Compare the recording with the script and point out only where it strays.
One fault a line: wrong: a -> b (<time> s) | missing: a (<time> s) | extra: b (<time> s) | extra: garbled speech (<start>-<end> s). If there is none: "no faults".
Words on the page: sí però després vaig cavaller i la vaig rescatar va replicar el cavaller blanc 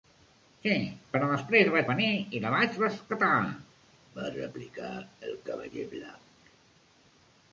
wrong: cavaller -> venir (1.9 s)